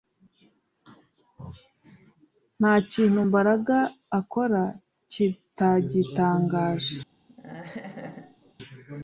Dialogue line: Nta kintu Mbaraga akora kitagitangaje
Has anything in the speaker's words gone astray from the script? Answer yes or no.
no